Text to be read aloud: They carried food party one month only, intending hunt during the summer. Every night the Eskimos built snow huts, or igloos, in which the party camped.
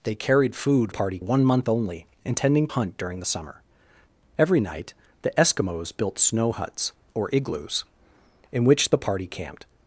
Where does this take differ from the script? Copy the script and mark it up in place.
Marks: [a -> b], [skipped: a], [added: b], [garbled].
They carried food party one month only, intending hunt during the summer. Every night the Eskimos built snow huts, or igloos, in which the party camped.